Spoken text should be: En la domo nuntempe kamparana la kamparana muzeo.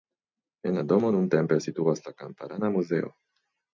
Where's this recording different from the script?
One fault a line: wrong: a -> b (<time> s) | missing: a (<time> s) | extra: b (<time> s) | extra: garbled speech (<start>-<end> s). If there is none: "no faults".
wrong: kamparana -> situas (1.6 s)